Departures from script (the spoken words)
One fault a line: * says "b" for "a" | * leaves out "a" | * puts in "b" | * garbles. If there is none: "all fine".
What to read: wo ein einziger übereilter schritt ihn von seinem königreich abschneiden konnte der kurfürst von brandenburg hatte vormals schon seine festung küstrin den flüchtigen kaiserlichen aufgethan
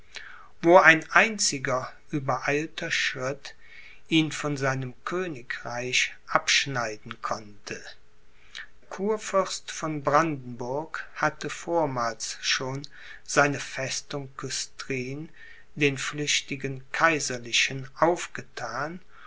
* leaves out "der"